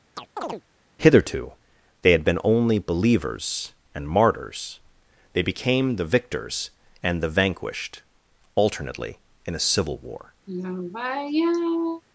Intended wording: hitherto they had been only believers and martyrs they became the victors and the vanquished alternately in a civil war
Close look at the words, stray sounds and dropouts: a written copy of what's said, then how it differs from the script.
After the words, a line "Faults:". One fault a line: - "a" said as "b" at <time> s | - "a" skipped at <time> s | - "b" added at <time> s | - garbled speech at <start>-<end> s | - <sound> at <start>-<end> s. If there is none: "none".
hitherto they had been only believers and martyrs they became the victors and the vanquished alternately in a civil war
Faults:
- chirp at 0.1-0.6 s
- sigh at 10.5-12.0 s